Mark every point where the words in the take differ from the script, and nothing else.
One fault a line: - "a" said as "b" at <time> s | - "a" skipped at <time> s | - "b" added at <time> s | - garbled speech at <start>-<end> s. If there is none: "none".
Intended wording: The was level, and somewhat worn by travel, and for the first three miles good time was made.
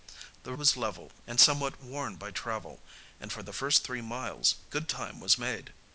none